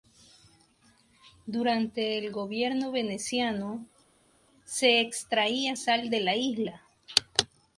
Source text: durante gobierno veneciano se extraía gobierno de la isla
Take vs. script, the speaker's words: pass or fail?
fail